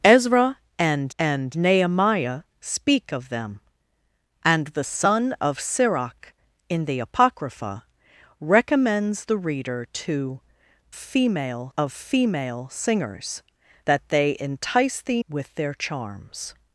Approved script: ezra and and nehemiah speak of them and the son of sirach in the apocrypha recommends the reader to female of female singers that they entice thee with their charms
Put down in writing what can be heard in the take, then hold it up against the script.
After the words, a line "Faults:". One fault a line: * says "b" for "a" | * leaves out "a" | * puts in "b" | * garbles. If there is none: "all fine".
ezra and and nehemiah speak of them and the son of sirach in the apocrypha recommends the reader to female of female singers that they entice thee with their charms
Faults:
all fine